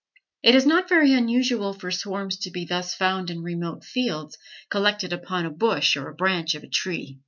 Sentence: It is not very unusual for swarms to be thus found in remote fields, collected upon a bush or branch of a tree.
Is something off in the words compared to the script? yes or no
no